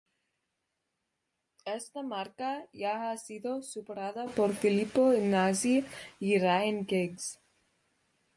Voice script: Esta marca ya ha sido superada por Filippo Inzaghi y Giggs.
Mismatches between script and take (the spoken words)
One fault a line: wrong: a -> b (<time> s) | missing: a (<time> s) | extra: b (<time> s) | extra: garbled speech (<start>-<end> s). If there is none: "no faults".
extra: Ryan (6.4 s)